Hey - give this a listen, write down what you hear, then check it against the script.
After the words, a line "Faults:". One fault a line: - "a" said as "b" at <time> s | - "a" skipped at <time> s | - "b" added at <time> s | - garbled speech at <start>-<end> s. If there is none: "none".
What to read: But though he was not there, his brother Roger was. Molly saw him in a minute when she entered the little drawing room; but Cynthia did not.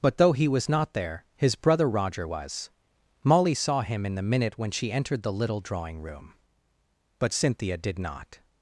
But though he was not there, his brother Roger was. Molly saw him in the minute when she entered the little drawing room; but Cynthia did not.
Faults:
- "a" said as "the" at 4.1 s